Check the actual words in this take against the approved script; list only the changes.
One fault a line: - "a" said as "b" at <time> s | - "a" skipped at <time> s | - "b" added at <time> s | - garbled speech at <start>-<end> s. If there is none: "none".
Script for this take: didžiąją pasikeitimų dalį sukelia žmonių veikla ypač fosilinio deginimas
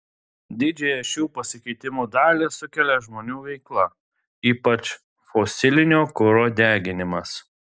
- "šių" added at 1.1 s
- "kuro" added at 6.2 s